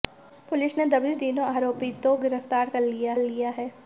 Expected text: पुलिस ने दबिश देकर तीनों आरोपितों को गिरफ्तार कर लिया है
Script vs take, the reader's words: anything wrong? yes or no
yes